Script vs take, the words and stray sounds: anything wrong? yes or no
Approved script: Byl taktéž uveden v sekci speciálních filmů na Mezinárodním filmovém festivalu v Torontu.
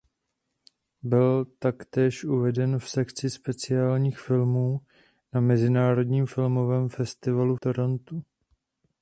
yes